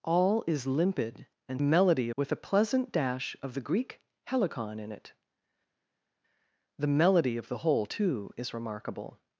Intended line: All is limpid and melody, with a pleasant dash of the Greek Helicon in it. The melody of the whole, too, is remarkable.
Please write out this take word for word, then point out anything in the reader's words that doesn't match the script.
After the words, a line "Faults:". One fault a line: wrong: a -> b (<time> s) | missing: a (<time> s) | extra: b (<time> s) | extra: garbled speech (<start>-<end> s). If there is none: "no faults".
All is limpid and melody, with a pleasant dash of the Greek Helicon in it. The melody of the whole, too, is remarkable.
Faults:
no faults